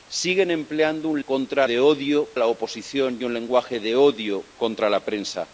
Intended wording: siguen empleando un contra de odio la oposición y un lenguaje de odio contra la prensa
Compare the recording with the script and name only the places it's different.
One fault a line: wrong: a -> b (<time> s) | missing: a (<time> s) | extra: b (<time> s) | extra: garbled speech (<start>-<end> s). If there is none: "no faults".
no faults